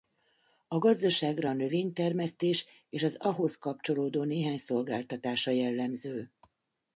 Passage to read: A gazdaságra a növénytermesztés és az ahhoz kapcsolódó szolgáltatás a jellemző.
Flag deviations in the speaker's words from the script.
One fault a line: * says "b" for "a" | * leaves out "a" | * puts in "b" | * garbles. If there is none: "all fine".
* puts in "néhány"